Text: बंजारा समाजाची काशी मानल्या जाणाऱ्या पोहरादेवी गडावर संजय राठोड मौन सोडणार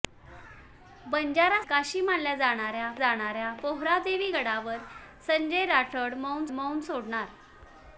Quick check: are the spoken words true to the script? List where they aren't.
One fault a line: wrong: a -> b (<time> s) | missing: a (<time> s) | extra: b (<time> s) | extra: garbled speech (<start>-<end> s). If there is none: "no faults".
missing: समाजाची (1.6 s)
extra: जाणाऱ्या (3.0 s)
extra: मौन (6.5 s)